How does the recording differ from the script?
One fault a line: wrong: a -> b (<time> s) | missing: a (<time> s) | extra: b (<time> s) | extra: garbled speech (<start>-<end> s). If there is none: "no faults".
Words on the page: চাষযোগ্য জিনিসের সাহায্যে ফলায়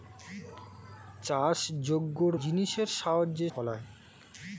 no faults